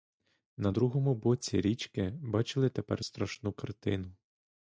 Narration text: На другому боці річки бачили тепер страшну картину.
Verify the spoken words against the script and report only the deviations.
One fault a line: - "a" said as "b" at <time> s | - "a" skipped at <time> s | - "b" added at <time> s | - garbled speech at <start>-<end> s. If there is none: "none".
none